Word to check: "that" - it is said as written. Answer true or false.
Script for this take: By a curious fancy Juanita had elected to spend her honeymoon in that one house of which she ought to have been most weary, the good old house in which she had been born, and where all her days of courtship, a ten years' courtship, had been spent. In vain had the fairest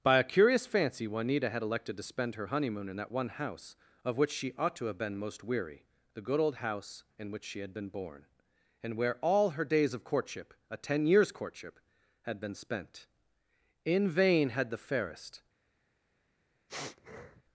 true